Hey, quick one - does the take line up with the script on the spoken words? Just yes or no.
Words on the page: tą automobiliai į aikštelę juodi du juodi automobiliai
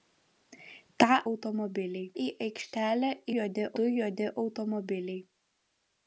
yes